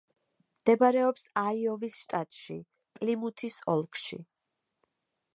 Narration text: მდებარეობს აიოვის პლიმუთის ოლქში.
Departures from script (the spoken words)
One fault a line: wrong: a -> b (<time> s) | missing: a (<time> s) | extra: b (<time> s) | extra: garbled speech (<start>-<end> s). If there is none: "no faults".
extra: შტატში (2.0 s)